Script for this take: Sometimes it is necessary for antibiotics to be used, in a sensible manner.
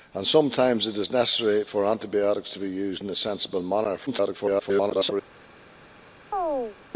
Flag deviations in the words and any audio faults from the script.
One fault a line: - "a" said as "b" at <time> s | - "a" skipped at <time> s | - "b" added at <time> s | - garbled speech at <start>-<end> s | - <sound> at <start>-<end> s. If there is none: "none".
- garbled speech at 4.1-5.1 s
- chirp at 6.3-6.8 s